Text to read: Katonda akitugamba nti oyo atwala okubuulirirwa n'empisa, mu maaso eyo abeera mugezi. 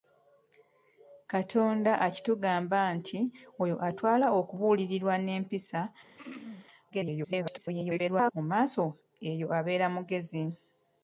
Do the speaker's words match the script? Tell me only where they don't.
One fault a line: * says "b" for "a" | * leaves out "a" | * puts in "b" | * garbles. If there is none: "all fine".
* garbles